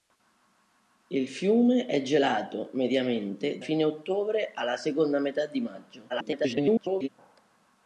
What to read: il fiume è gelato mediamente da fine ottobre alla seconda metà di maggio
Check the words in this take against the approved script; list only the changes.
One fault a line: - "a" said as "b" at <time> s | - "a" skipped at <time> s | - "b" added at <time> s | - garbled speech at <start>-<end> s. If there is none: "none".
- "da" skipped at 3.6 s
- garbled speech at 6.1-7.1 s